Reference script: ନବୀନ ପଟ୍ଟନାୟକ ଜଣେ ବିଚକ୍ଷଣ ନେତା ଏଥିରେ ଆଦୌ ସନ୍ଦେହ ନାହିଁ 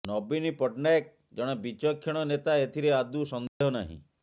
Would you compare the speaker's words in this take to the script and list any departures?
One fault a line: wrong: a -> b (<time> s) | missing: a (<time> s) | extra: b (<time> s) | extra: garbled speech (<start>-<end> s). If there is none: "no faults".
no faults